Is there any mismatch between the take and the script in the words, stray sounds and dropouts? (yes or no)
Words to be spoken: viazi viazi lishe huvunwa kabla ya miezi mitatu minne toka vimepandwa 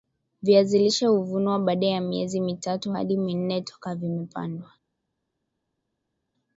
yes